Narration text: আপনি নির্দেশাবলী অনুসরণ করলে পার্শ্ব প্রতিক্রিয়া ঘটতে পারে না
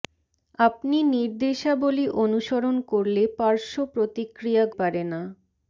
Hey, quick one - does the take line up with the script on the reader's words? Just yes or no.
no